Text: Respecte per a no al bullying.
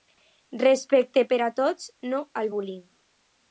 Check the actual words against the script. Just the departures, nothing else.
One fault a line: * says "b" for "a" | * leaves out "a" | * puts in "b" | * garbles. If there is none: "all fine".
* puts in "tots"